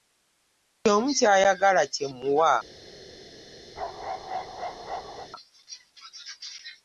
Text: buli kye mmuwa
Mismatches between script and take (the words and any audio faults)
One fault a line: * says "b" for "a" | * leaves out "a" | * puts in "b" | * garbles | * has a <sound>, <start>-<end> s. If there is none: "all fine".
* puts in "omu ky'ayagala"
* has a bark, 3.8-5.3 s